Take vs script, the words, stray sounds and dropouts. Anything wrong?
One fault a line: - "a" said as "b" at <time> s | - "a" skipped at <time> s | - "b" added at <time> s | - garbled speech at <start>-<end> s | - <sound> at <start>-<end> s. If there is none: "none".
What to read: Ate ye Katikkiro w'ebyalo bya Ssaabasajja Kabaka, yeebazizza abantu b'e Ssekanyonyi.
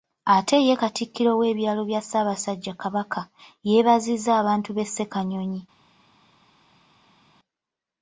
none